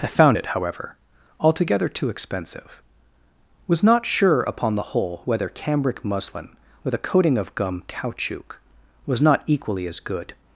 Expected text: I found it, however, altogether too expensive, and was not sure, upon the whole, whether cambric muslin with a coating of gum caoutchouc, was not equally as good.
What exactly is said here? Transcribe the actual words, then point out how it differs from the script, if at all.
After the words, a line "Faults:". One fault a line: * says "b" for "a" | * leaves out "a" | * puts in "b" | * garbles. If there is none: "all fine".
I found it, however, altogether too expensive, was not sure, upon the whole, whether cambric muslin with a coating of gum caoutchouc, was not equally as good.
Faults:
* leaves out "and"